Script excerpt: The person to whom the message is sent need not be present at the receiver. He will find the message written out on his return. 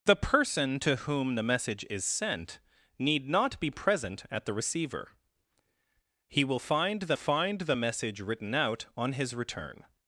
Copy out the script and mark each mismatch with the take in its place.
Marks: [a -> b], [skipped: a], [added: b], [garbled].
The person to whom the message is sent need not be present at the receiver. He will find the [added: find the] message written out on his return.